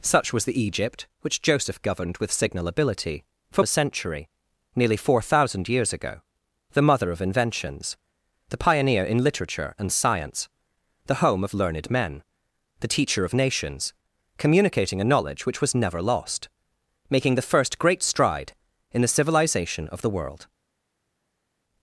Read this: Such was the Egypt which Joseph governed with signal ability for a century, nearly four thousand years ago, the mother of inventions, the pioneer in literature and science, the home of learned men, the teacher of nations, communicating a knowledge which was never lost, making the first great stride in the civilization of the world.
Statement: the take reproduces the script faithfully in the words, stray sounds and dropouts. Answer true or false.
true